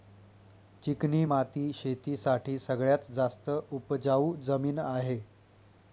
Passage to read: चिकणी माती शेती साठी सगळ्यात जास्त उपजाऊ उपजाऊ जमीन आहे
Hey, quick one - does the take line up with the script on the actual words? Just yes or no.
no